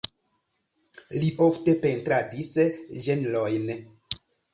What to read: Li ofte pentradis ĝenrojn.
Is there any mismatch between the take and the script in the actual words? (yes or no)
no